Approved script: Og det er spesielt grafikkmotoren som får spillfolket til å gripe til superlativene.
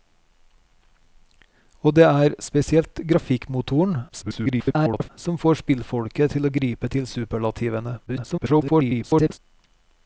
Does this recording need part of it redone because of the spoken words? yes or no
yes